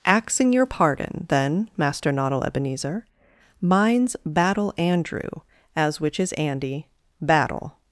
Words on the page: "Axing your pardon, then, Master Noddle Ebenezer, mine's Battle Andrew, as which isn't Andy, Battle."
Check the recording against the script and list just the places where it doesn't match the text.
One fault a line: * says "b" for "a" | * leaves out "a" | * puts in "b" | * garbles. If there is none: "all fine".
* says "is" for "isn't"